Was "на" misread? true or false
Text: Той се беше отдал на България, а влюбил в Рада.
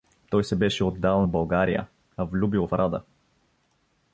true